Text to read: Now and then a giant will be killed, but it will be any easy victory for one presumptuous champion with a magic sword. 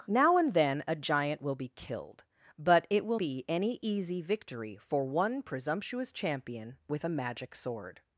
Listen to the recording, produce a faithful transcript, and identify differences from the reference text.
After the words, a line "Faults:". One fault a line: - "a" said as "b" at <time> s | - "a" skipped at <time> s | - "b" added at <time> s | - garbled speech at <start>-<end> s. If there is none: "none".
Now and then a giant will be killed, but it will be any easy victory for one presumptuous champion with a magic sword.
Faults:
none